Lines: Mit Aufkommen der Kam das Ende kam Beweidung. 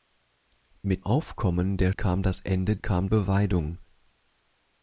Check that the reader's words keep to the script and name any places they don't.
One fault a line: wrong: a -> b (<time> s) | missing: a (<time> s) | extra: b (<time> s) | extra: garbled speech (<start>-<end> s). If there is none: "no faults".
no faults